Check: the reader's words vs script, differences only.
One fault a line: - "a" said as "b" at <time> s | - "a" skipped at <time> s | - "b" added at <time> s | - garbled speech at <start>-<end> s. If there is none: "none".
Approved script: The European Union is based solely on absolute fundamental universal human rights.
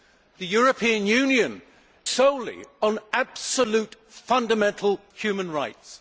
- "is based" skipped at 1.6 s
- "universal" skipped at 5.0 s